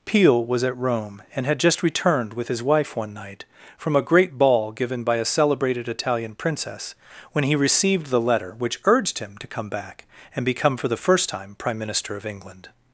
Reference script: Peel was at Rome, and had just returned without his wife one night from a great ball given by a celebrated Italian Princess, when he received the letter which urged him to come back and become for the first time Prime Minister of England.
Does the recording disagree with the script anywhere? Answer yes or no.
yes